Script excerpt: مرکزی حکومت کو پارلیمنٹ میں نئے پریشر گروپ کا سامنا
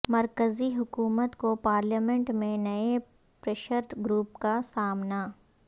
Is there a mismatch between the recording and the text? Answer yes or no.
no